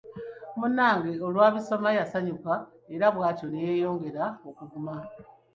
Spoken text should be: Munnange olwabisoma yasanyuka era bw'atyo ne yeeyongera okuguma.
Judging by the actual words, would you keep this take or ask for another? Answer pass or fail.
pass